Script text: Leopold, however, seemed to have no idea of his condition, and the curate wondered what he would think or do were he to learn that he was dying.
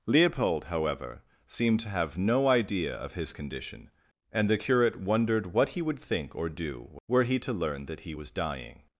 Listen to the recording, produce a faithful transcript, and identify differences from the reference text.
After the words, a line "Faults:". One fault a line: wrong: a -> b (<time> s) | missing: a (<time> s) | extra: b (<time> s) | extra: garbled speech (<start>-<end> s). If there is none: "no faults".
Leopold, however, seemed to have no idea of his condition, and the curate wondered what he would think or do were he to learn that he was dying.
Faults:
no faults